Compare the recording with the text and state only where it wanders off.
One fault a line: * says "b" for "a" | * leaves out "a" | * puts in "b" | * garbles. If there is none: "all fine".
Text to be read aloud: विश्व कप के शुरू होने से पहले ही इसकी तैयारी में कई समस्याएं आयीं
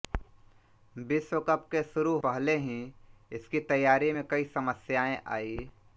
* leaves out "होने से"